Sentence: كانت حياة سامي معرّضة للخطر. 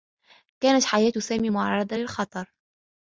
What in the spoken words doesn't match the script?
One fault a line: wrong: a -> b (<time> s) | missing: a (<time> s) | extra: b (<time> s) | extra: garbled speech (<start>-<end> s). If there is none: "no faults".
no faults